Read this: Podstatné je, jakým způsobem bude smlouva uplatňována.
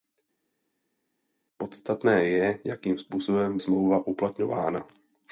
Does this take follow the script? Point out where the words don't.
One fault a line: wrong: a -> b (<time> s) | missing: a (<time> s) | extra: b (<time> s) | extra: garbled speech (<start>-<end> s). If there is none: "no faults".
missing: bude (3.6 s)